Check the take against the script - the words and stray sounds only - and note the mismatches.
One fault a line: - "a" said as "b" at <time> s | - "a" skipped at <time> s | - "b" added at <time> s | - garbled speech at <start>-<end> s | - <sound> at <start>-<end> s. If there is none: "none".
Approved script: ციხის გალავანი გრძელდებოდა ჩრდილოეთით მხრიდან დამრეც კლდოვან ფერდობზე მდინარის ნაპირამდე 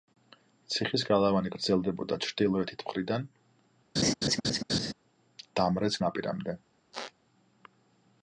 - laugh at 4.0-4.9 s
- "კლდოვან ფერდობზე მდინარის" skipped at 6.0 s
- squeak at 6.9-7.1 s